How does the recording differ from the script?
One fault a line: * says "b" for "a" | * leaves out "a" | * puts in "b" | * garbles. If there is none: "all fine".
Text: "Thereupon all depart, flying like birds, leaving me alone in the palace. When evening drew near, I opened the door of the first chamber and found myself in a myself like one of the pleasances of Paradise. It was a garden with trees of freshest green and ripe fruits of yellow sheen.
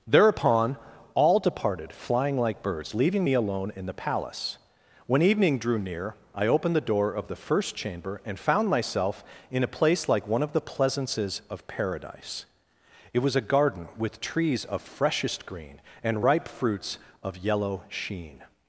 * says "departed" for "depart"
* says "place" for "myself"